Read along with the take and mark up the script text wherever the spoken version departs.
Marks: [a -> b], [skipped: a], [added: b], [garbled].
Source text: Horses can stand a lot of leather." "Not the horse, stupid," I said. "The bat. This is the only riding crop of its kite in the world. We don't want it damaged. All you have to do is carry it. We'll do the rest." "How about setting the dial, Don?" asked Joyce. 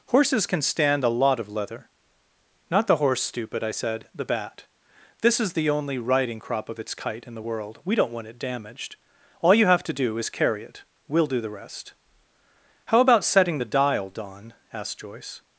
Horses can stand a lot of leather." "Not the horse, stupid," I said. "The bat. This is the only riding crop of its kite in the world. We don't want it damaged. All you have to do is carry it. We'll do the rest." "How about setting the dial, Don?" asked Joyce.